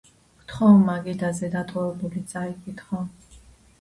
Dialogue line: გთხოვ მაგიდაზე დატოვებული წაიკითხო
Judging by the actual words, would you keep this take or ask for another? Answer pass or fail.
pass